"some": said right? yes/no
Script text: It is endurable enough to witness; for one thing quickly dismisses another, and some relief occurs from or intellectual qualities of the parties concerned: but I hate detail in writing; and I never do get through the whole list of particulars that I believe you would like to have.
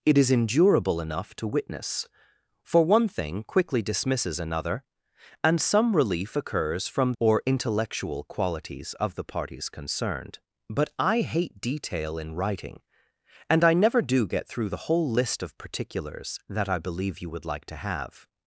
yes